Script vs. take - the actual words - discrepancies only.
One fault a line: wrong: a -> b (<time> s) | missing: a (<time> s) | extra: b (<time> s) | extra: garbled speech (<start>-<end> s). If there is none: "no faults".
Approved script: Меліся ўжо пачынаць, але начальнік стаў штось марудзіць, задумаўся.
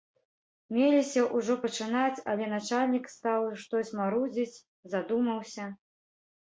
no faults